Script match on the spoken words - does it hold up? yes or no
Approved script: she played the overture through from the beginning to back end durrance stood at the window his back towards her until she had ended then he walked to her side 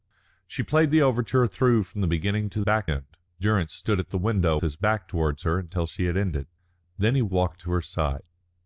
yes